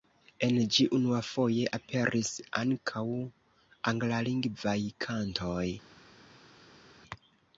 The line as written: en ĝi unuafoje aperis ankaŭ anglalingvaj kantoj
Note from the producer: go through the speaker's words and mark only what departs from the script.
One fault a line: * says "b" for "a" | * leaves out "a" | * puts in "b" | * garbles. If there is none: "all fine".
all fine